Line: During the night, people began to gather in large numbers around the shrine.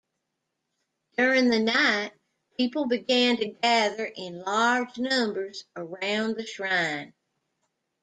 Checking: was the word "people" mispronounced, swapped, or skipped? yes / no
no